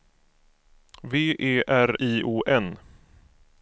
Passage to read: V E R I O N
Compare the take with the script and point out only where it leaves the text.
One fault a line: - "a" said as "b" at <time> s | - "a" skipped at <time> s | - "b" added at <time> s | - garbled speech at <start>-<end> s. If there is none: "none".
none